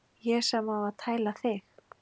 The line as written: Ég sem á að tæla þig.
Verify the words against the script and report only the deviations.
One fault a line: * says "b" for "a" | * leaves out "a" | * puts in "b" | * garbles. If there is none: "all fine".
all fine